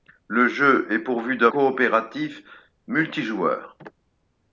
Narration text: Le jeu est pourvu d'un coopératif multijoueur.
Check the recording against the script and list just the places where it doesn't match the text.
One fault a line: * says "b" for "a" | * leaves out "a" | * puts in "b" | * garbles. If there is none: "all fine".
all fine